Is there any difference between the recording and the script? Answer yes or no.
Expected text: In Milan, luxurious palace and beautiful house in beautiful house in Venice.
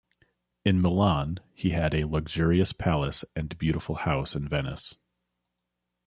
yes